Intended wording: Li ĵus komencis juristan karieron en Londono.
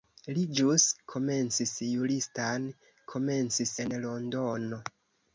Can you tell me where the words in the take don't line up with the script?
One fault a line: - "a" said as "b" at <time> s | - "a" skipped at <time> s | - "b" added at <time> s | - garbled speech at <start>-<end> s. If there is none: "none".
- "karieron" said as "komencis" at 3.1 s